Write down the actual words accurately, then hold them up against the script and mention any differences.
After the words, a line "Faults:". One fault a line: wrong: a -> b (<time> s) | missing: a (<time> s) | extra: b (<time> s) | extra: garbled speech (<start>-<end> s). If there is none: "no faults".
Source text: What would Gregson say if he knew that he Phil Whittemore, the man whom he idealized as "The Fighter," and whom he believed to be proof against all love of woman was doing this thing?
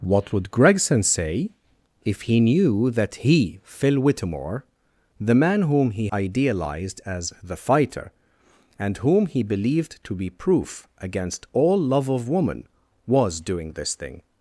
What would Gregson say if he knew that he Phil Whittemore, the man whom he idealized as "The Fighter," and whom he believed to be proof against all love of woman was doing this thing?
Faults:
no faults